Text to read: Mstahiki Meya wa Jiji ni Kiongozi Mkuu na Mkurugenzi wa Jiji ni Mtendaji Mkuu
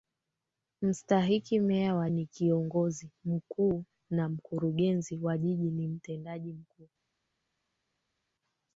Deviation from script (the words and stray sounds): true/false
true